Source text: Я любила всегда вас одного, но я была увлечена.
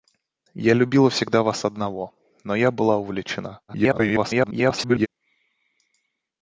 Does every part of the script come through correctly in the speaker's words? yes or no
no